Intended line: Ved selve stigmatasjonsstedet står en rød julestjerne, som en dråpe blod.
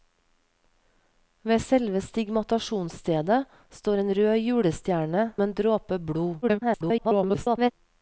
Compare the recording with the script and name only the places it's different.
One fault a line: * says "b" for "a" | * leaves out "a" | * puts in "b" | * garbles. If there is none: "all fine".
* leaves out "som"
* garbles